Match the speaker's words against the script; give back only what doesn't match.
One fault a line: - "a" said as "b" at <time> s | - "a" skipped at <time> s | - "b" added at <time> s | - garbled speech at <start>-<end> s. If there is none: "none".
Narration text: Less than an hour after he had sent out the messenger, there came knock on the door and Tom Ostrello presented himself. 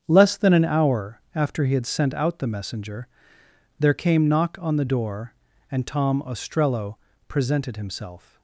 none